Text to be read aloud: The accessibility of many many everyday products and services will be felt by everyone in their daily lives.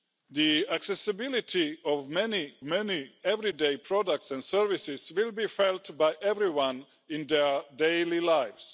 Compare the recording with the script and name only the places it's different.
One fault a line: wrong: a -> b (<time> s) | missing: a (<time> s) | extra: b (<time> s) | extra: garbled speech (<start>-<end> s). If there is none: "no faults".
no faults